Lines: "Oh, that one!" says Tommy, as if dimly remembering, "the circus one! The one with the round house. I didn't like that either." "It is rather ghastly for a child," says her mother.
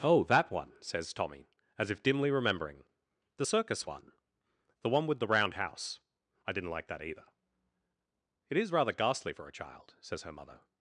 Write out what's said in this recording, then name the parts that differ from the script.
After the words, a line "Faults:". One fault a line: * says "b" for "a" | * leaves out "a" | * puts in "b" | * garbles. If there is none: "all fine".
"Oh, that one!" says Tommy, as if dimly remembering, "the circus one! The one with the round house. I didn't like that either." "It is rather ghastly for a child," says her mother.
Faults:
all fine